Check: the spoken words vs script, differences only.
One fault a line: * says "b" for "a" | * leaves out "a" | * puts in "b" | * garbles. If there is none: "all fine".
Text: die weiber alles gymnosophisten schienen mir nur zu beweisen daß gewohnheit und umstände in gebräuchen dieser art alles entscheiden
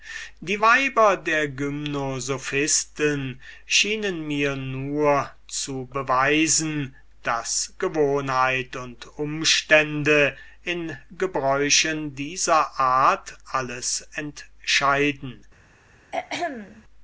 * says "der" for "alles"